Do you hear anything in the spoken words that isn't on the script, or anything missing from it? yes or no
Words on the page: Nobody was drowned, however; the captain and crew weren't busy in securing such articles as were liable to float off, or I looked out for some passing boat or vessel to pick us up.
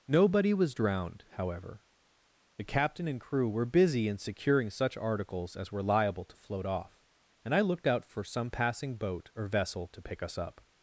yes